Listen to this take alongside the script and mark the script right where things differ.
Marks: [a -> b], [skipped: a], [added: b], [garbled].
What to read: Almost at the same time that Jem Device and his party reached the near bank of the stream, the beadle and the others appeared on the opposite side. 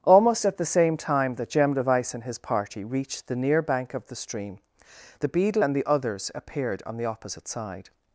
Almost at the same time that Jem Device and his party reached the near bank of the stream, the beadle and the others appeared on the opposite side.